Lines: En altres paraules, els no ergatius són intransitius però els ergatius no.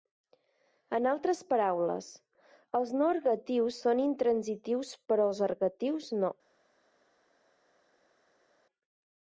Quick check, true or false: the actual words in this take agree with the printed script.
true